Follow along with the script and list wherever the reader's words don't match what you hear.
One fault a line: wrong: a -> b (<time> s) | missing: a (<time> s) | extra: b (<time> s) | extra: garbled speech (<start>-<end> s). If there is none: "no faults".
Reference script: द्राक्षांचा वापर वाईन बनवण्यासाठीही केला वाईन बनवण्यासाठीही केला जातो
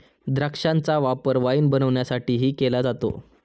missing: वाईन बनवण्यासाठीही केला (2.8 s)